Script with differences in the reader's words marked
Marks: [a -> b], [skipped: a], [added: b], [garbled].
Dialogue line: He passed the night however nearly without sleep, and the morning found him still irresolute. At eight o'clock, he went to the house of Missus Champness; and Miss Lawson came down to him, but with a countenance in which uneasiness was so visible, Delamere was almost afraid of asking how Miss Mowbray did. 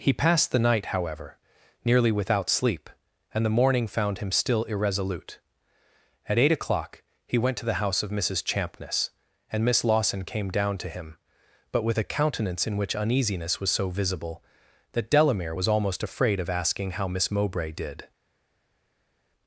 He passed the night however nearly without sleep, and the morning found him still irresolute. At eight o'clock, he went to the house of Missus Champness; and Miss Lawson came down to him, but with a countenance in which uneasiness was so visible, [added: that] Delamere was almost afraid of asking how Miss Mowbray did.